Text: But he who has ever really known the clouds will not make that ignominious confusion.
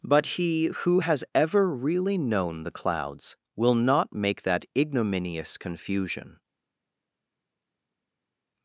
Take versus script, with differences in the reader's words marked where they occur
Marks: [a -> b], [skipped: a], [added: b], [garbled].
But he who has ever really known the clouds will not make that ignominious confusion.